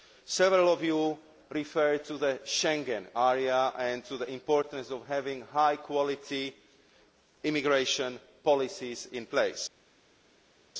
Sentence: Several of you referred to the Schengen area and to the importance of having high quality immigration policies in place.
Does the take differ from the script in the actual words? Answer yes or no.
no